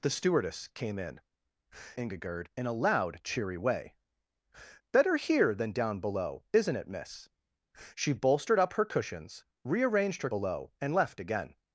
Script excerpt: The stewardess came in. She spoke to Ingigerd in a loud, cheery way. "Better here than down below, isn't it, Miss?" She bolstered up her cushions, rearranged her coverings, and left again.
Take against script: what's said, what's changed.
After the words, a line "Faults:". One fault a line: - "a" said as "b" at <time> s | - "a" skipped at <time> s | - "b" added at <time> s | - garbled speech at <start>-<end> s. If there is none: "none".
The stewardess came in. Ingigerd in a loud, cheery way. "Better here than down below, isn't it, Miss?" She bolstered up her cushions, rearranged her below, and left again.
Faults:
- "She spoke to" skipped at 1.2 s
- "coverings" said as "below" at 10.3 s